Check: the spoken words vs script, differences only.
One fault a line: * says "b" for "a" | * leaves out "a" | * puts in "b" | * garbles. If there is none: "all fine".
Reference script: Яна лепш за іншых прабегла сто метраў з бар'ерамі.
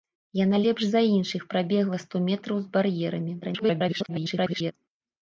* garbles